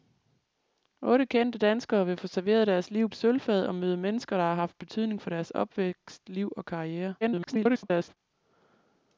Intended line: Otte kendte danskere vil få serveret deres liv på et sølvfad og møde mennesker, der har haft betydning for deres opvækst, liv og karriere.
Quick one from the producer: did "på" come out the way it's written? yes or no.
no